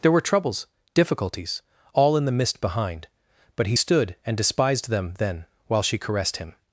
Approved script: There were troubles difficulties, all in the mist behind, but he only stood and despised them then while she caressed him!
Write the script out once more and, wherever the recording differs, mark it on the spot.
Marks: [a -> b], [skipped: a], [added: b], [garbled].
There were troubles difficulties, all in the mist behind, but he [skipped: only] stood and despised them then while she caressed him!